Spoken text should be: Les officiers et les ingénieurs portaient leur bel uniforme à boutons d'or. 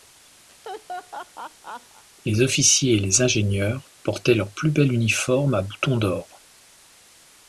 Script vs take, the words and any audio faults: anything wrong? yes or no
yes